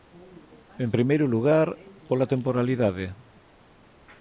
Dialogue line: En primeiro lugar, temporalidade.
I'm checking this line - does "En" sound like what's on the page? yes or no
yes